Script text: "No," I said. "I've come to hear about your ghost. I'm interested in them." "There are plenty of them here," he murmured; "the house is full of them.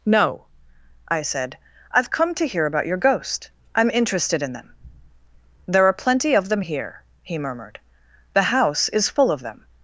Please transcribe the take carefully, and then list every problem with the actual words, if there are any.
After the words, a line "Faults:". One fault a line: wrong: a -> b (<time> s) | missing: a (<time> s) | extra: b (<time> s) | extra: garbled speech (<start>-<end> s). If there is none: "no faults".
"No," I said. "I've come to hear about your ghost. I'm interested in them." "There are plenty of them here," he murmured; "the house is full of them.
Faults:
no faults